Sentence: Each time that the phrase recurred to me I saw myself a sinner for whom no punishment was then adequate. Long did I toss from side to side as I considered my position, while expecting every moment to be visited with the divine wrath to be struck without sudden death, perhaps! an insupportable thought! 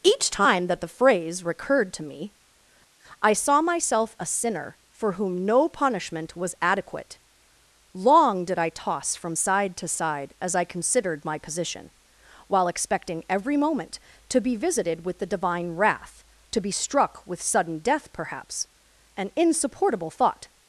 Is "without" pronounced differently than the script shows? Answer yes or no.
yes